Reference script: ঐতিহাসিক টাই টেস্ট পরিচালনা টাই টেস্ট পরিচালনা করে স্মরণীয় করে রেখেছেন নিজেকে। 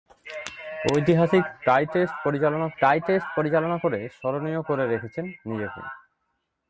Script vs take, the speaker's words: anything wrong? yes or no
no